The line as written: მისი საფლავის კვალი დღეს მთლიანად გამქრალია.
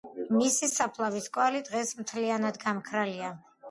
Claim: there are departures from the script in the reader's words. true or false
false